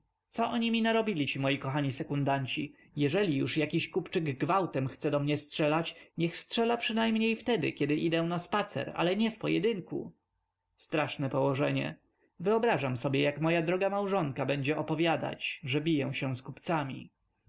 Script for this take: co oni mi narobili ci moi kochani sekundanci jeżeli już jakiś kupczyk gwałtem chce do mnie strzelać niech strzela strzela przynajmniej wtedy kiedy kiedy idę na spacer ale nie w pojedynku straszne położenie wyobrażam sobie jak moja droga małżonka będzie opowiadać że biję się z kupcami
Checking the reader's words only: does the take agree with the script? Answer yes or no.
no